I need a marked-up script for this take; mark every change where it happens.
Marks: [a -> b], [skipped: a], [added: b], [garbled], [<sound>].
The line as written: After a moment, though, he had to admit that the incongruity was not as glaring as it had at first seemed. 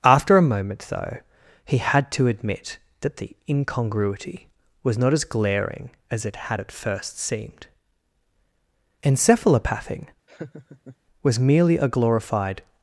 After a moment, though, he had to admit that the incongruity was not as glaring as it had at first seemed. [added: Encephalopathing was merely a glorified] [laugh]